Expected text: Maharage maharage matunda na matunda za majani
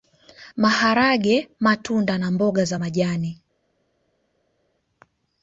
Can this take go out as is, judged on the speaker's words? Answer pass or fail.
fail